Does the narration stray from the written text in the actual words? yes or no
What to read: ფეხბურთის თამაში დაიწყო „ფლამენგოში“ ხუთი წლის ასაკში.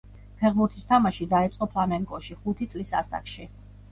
no